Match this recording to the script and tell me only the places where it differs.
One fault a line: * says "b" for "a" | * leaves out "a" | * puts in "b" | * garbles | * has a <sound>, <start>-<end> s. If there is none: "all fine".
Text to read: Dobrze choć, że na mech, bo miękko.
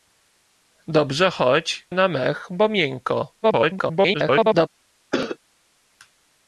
* leaves out "że"
* garbles
* has a cough, 5.1-5.4 s